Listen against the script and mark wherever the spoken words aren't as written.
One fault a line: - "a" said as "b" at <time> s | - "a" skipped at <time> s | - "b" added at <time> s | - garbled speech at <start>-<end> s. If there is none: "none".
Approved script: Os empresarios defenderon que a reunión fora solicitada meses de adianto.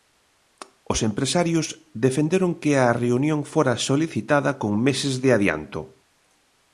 - "con" added at 4.6 s